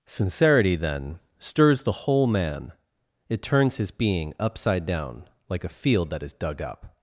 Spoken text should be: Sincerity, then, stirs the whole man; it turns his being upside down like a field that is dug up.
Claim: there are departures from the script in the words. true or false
false